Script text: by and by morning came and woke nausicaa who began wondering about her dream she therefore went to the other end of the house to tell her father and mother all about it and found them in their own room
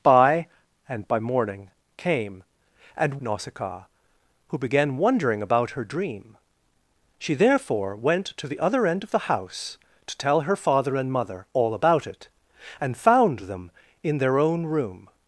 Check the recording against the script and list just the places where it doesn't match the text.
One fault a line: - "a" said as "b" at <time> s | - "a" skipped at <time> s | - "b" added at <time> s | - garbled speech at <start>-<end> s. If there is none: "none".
- "woke" skipped at 3.2 s